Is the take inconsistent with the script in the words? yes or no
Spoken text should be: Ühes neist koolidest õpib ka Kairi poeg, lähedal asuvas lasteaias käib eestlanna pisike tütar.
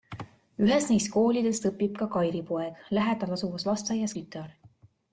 yes